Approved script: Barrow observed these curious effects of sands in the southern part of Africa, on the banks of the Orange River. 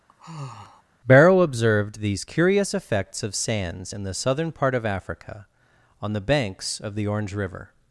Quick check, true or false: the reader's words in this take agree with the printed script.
true